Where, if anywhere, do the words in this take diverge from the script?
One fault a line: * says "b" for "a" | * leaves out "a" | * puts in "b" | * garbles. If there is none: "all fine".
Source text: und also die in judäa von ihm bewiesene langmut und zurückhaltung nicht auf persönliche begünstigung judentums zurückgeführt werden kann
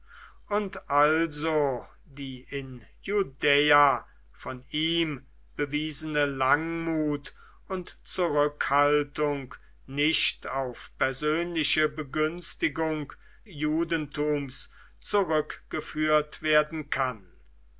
all fine